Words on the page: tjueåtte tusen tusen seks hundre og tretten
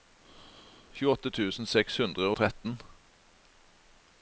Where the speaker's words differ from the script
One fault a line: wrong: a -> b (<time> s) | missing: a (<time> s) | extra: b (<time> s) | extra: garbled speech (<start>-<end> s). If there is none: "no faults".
missing: tusen (1.7 s)